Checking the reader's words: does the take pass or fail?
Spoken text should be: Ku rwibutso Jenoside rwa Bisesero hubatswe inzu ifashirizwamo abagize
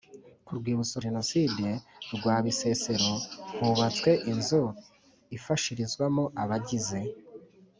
pass